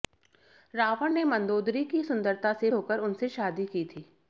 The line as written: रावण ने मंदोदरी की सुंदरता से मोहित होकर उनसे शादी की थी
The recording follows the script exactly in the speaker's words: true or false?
false